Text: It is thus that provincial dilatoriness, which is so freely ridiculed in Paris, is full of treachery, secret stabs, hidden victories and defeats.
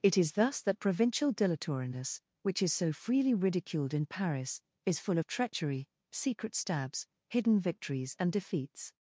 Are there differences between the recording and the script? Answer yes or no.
no